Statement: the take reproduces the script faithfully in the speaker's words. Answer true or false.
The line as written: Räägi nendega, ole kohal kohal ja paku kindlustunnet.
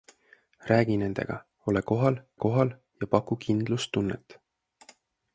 true